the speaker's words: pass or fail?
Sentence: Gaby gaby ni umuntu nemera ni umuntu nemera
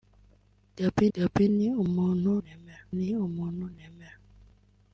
pass